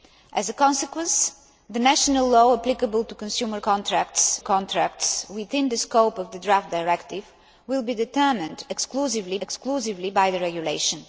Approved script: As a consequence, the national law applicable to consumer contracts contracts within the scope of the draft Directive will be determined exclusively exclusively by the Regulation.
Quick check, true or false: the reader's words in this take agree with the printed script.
true